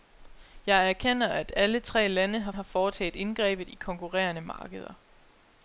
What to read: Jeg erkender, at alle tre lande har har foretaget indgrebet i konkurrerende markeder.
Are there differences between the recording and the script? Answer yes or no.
no